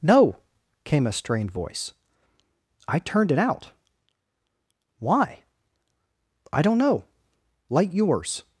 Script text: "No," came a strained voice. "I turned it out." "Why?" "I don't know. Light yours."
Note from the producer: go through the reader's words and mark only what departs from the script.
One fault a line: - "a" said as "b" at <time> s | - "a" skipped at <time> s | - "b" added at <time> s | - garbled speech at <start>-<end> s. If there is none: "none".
none